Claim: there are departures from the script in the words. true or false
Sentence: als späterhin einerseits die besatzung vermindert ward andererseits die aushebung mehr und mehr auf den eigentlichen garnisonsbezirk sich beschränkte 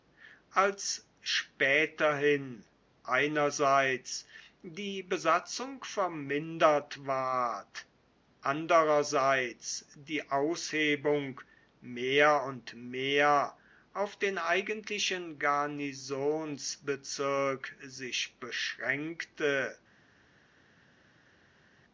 false